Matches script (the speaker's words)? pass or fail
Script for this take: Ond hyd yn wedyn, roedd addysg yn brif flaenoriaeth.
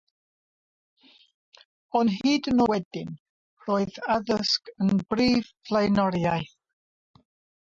pass